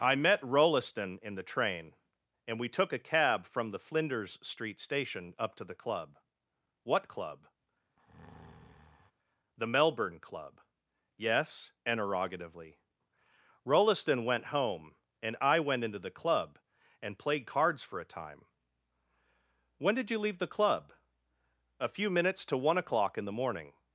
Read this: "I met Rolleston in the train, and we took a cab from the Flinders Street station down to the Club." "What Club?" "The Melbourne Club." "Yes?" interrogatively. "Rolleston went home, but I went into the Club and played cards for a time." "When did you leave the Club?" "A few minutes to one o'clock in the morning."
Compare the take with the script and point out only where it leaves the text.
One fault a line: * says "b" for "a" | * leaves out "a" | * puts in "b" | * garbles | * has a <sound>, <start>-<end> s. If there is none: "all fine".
* says "up" for "down"
* has a breath, 8.0-9.1 s
* says "and" for "but"